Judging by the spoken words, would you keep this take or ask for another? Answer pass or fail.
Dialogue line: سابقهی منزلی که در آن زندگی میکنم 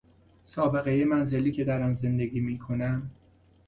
pass